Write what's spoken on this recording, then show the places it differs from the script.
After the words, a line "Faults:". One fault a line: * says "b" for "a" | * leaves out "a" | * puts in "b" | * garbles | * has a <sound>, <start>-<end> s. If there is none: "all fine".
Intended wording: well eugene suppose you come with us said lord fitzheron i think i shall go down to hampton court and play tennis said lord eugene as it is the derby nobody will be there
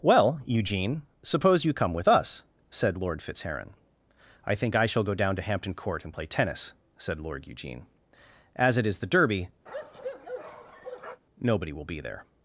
well eugene suppose you come with us said lord fitzheron i think i shall go down to hampton court and play tennis said lord eugene as it is the derby nobody will be there
Faults:
* has a bark, 9.7-11.2 s